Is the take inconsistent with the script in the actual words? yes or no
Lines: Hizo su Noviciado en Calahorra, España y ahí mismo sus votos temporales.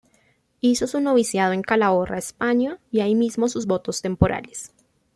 no